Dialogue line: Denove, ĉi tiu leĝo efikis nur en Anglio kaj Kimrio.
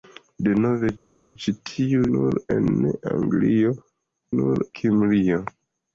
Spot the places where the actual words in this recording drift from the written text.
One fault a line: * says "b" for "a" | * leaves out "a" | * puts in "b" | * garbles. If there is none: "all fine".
* leaves out "leĝo efikis"
* says "nur" for "kaj"